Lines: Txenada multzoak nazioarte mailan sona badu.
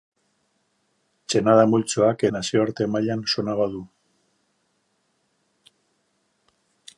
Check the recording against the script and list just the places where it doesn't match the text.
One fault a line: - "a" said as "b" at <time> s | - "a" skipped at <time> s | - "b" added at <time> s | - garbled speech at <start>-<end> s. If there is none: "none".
none